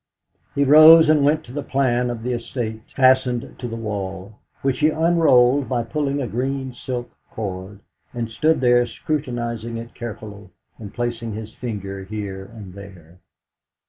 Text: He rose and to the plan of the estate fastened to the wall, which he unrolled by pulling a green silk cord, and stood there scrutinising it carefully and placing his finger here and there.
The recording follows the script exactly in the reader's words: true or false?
false